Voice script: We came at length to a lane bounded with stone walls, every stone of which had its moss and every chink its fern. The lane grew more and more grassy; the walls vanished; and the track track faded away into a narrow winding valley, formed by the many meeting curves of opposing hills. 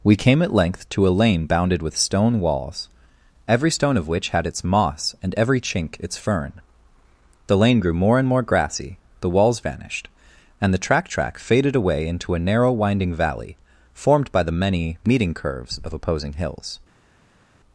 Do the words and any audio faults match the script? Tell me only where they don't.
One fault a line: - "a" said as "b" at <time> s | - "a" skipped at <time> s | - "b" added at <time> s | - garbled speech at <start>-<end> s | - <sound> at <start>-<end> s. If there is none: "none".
none